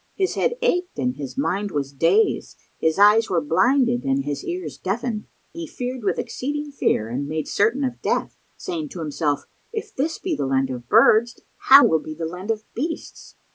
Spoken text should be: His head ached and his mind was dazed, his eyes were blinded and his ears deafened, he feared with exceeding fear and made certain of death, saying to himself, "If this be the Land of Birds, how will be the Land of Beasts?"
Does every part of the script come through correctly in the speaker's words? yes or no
yes